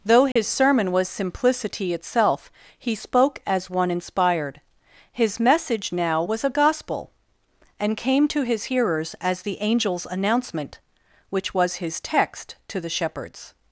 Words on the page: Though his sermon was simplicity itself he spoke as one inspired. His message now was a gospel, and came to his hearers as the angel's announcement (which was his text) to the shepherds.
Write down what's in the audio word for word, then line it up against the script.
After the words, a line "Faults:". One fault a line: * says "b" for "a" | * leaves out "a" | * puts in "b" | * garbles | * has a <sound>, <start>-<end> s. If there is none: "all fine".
Though his sermon was simplicity itself he spoke as one inspired. His message now was a gospel, and came to his hearers as the angel's announcement (which was his text) to the shepherds.
Faults:
* has a dropout, 0.3-0.4 s